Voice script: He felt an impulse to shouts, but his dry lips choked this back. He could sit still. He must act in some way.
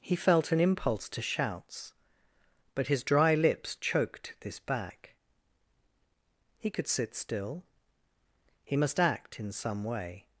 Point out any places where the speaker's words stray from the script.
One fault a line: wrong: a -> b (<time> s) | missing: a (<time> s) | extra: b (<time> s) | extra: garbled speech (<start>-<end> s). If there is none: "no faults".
no faults